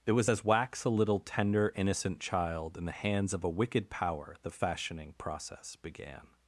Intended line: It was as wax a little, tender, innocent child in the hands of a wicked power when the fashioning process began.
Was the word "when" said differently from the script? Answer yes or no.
yes